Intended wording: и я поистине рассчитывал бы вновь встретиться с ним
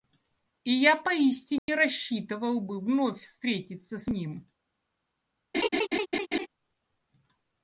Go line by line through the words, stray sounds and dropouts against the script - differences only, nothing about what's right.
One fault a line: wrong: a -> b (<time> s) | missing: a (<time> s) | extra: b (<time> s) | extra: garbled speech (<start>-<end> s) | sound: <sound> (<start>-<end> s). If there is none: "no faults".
sound: dropout (1.6-1.7 s)
sound: laugh (5.5-6.5 s)